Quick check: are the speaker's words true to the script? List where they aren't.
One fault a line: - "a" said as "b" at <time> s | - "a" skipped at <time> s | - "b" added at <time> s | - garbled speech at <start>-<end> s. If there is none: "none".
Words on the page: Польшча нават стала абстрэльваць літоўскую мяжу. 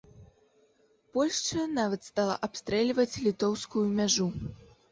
none